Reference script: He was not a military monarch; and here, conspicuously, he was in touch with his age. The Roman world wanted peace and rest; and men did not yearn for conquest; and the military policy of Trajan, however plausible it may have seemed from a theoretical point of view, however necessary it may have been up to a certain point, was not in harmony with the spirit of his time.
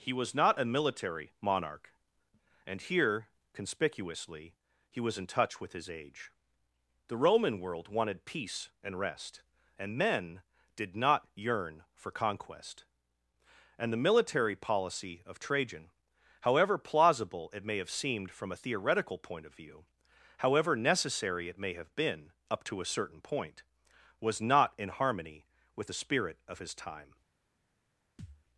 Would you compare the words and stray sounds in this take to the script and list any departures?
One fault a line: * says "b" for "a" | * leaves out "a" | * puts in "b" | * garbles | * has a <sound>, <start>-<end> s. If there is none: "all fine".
* has a thud, 28.2-28.4 s